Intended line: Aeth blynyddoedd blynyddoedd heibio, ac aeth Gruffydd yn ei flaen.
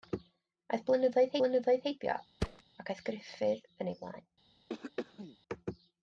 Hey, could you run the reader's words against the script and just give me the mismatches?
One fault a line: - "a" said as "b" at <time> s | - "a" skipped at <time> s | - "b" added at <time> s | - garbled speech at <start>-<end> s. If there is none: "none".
none